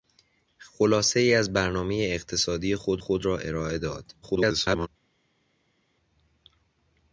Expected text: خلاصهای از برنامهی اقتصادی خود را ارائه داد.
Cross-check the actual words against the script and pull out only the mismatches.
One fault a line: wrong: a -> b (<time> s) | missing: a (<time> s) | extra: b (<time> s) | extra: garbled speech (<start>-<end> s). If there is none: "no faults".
extra: خود (3.0 s)
extra: garbled speech (4.2-4.9 s)